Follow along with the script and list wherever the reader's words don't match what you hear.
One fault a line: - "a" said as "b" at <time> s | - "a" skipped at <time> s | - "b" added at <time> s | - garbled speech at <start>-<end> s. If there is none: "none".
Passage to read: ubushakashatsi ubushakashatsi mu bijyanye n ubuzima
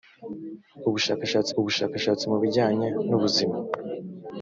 none